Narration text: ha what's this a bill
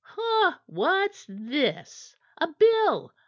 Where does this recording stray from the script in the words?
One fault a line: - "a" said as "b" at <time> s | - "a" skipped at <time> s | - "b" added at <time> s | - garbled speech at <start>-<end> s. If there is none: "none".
none